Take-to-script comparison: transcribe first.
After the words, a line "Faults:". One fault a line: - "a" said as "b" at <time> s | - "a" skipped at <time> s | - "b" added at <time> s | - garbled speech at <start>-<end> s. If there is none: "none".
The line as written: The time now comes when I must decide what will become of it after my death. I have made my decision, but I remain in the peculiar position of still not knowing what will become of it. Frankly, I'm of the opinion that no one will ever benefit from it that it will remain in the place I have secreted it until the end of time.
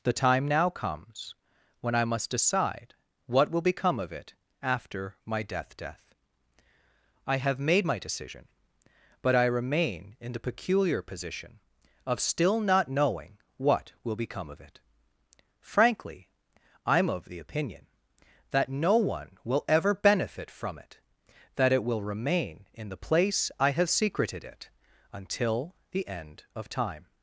The time now comes when I must decide what will become of it after my death death. I have made my decision, but I remain in the peculiar position of still not knowing what will become of it. Frankly, I'm of the opinion that no one will ever benefit from it that it will remain in the place I have secreted it until the end of time.
Faults:
- "death" added at 5.8 s